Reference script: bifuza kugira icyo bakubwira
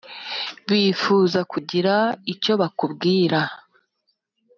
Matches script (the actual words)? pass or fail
pass